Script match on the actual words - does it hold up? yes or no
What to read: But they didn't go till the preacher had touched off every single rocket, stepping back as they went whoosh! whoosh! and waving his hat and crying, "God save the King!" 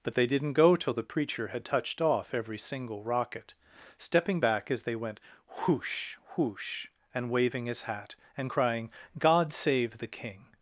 yes